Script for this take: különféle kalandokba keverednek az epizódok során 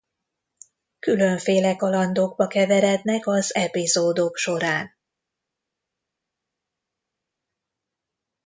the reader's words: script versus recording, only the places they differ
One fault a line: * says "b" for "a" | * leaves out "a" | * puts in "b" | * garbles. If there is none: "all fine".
all fine